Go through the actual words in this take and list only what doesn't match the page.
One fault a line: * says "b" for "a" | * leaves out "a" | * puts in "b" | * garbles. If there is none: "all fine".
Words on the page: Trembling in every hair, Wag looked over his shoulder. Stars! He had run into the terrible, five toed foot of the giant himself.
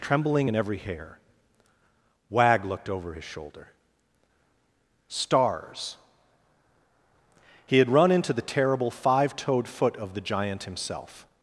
all fine